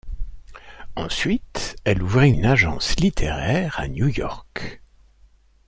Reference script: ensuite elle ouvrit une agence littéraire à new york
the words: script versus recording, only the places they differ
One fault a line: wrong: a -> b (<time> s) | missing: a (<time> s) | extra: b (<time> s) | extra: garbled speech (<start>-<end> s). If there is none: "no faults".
no faults